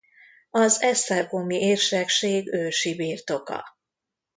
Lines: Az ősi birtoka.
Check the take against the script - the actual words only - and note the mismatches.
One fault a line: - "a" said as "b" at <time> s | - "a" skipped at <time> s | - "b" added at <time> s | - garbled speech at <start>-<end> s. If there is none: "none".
- "esztergomi érsekség" added at 0.8 s